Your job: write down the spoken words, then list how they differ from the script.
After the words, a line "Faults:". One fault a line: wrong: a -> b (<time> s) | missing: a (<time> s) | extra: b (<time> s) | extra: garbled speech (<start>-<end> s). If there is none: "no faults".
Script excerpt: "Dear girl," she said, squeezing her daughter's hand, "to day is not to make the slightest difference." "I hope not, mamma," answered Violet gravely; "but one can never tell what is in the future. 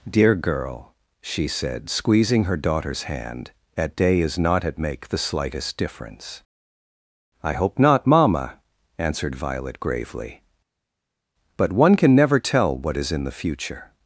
"Dear girl," she said, squeezing her daughter's hand, "at day is not at make the slightest difference." "I hope not, mamma," answered Violet gravely; "but one can never tell what is in the future.
Faults:
wrong: to -> at (3.8 s)
wrong: to -> at (4.7 s)